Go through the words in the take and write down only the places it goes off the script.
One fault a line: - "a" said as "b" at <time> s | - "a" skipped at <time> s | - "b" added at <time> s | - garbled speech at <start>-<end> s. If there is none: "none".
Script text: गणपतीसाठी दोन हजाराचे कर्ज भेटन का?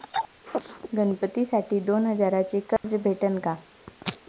none